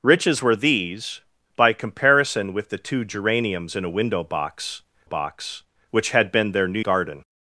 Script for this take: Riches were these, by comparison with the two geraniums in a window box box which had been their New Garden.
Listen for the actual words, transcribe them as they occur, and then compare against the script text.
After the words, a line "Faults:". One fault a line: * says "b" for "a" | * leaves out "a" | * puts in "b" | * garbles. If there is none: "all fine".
Riches were these, by comparison with the two geraniums in a window box box which had been their New Garden.
Faults:
all fine